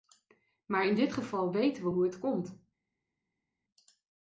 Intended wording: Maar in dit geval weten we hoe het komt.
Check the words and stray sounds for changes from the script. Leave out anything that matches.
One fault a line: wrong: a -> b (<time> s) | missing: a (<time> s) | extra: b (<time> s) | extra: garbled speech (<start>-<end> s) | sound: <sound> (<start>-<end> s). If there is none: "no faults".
no faults